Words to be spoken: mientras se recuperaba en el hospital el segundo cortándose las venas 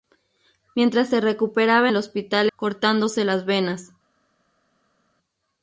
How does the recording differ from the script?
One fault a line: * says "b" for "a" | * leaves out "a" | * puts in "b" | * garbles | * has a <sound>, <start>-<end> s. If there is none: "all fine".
* leaves out "en"
* leaves out "el segundo"